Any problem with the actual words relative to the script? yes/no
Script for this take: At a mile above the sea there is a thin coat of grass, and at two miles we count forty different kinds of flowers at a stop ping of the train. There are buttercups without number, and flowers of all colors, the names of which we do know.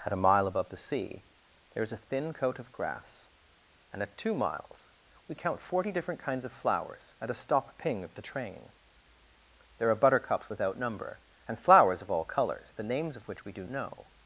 no